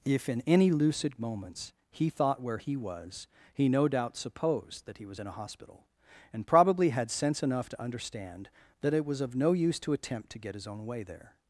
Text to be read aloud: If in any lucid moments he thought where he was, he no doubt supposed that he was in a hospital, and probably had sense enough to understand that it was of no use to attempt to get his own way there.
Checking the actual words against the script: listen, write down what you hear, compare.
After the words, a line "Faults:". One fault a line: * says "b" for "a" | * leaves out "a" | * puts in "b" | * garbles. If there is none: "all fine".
If in any lucid moments he thought where he was, he no doubt supposed that he was in a hospital, and probably had sense enough to understand that it was of no use to attempt to get his own way there.
Faults:
all fine